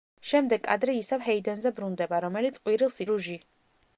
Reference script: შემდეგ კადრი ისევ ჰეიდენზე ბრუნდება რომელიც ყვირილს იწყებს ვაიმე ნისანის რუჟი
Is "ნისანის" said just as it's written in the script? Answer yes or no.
no